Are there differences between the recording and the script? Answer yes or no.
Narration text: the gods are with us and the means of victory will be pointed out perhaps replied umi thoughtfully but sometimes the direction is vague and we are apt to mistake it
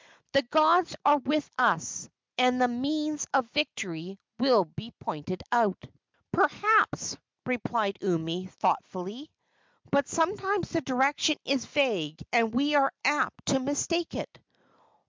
no